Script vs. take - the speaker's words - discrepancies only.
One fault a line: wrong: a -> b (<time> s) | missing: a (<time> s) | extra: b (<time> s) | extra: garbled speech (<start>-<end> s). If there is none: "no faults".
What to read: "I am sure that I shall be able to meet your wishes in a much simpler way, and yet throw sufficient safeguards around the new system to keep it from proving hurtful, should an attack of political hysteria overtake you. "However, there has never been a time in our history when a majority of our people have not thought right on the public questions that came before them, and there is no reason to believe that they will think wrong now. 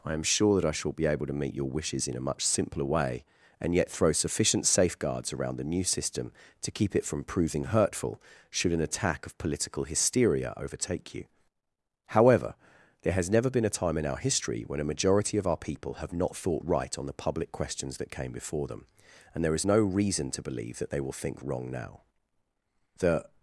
extra: The (23.0 s)